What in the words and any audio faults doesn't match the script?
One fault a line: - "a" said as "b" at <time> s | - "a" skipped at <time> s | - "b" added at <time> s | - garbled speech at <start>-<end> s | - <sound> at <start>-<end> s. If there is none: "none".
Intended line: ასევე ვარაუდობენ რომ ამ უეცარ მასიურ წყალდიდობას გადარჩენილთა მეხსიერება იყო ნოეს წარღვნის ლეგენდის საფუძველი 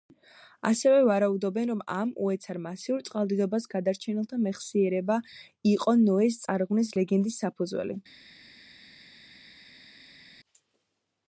none